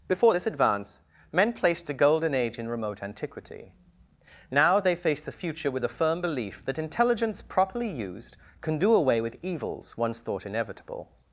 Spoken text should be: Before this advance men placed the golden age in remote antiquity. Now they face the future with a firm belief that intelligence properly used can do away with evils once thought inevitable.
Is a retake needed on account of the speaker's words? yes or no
yes